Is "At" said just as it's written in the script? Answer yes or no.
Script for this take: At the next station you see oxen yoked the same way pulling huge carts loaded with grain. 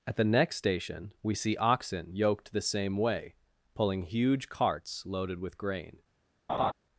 yes